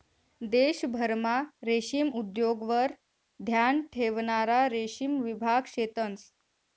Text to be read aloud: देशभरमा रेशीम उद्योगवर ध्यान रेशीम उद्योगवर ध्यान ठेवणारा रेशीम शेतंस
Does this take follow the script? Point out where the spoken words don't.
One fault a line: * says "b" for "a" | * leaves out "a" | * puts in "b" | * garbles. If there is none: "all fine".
* leaves out "रेशीम उद्योगवर ध्यान"
* puts in "विभाग"